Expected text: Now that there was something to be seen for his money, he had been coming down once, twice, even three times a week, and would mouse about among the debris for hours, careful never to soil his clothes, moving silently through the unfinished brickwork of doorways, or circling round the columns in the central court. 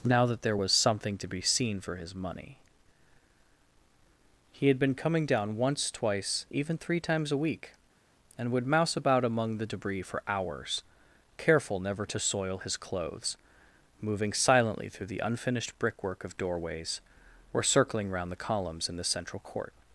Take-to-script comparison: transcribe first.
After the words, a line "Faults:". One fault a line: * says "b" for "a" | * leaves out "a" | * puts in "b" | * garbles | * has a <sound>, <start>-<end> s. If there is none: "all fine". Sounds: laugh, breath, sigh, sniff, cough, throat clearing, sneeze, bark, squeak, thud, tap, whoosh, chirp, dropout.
Now that there was something to be seen for his money, he had been coming down once, twice, even three times a week, and would mouse about among the debris for hours, careful never to soil his clothes, moving silently through the unfinished brickwork of doorways, or circling round the columns in the central court.
Faults:
all fine